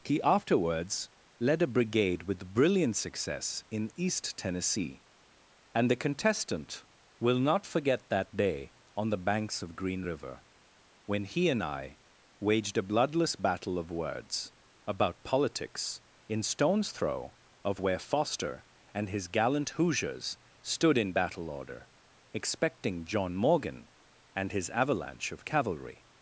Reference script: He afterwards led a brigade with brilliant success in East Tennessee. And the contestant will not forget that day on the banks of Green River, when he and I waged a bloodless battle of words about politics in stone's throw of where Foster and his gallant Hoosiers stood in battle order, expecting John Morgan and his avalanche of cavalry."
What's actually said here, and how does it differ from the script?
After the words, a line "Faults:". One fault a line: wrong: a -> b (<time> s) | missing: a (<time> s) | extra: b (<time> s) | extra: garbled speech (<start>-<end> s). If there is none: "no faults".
He afterwards led a brigade with brilliant success in East Tennessee. And the contestant will not forget that day on the banks of Green River, when he and I waged a bloodless battle of words about politics in stone's throw of where Foster and his gallant Hoosiers stood in battle order, expecting John Morgan and his avalanche of cavalry."
Faults:
no faults